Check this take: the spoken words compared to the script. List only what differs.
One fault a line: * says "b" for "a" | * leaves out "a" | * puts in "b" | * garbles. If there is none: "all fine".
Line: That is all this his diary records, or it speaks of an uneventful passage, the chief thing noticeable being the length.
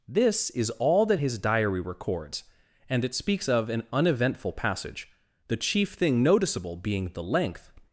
* says "This" for "That"
* says "that" for "this"
* says "and" for "or"